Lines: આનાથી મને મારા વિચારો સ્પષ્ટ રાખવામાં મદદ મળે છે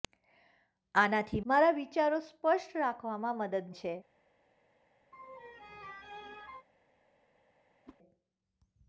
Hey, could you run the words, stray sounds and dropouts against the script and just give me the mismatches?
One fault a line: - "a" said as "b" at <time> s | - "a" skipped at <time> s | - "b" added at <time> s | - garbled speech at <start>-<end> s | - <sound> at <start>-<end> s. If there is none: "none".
- "મને" skipped at 1.4 s
- "મળે" skipped at 3.8 s
- laugh at 5.1-6.7 s
- whoosh at 7.9-8.0 s